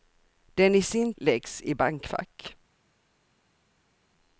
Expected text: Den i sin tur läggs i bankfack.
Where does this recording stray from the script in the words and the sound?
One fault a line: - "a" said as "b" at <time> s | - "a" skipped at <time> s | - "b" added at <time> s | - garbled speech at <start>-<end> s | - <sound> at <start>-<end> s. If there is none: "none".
- "tur" skipped at 1.1 s